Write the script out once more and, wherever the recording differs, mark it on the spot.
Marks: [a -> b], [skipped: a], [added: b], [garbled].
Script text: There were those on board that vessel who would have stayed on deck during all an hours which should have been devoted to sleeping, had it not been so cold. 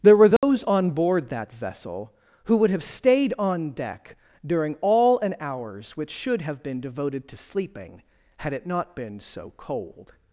There were those on board that vessel who would have stayed on deck during all an hours which should have been devoted to sleeping, had it not been so cold.